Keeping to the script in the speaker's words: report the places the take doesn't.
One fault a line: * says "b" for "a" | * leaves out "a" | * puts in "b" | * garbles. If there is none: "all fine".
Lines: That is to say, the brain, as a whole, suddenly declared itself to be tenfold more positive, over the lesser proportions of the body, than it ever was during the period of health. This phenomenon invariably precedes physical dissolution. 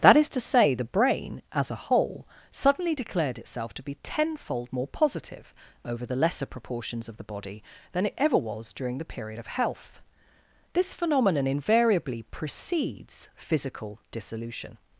all fine